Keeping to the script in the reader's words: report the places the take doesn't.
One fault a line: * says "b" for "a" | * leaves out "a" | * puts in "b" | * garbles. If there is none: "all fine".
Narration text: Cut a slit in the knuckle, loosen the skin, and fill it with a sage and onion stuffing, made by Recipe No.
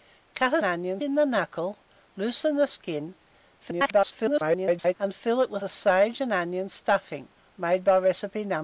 * says "onion" for "slit"
* garbles